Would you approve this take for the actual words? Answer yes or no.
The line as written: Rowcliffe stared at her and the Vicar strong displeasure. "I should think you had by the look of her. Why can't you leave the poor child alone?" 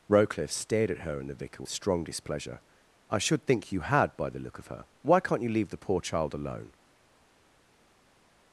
yes